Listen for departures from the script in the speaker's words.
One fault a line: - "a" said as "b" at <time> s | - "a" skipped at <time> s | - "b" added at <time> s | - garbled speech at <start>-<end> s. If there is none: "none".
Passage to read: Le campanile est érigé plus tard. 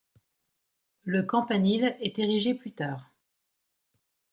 none